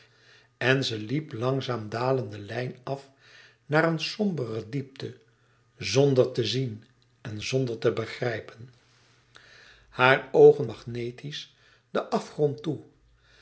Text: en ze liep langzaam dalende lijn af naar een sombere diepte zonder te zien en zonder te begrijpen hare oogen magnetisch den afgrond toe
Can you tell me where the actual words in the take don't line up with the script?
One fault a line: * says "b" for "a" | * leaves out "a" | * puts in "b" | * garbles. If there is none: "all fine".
all fine